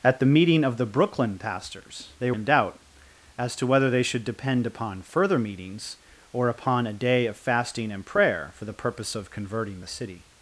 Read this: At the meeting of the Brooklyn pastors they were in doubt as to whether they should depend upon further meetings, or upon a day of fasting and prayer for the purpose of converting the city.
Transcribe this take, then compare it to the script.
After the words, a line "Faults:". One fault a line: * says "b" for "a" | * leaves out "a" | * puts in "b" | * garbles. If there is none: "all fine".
At the meeting of the Brooklyn pastors they in doubt as to whether they should depend upon further meetings, or upon a day of fasting and prayer for the purpose of converting the city.
Faults:
* leaves out "were"